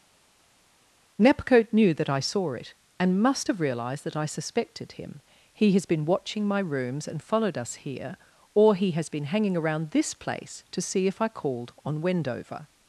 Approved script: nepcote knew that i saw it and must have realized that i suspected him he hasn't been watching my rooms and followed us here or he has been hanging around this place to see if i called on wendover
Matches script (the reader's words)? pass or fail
fail